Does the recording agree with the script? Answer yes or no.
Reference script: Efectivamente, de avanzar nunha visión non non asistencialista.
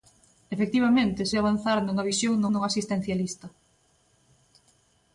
yes